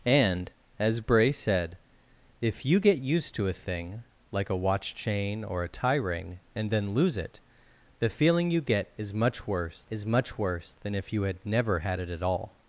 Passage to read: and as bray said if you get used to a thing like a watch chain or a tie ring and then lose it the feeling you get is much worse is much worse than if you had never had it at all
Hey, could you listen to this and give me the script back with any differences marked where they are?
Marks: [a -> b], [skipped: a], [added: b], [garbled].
and as bray said if you get used to a thing like a watch chain or a tie ring and then lose it the feeling you get is much worse is much worse than if you had never had it at all